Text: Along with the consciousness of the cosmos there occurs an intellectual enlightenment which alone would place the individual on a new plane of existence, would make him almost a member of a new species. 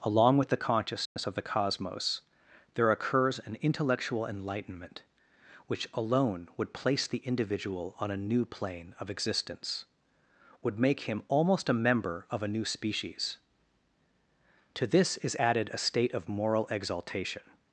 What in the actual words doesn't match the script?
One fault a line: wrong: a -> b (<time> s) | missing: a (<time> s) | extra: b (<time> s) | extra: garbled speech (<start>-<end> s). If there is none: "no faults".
extra: To this is added a state of moral exaltation (14.7 s)